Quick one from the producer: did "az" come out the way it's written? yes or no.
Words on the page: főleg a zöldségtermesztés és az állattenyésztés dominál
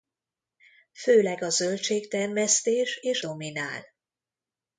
no